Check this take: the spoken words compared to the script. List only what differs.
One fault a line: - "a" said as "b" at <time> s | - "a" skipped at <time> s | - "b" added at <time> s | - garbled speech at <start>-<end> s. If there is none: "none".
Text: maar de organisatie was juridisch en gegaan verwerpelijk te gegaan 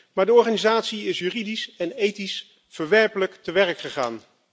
- "was" said as "is" at 1.1 s
- "gegaan" said as "ethisch" at 1.9 s
- "werk" added at 3.5 s